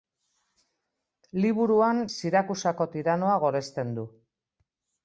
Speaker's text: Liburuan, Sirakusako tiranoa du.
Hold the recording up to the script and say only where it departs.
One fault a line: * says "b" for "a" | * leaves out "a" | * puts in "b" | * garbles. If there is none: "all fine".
* puts in "goresten"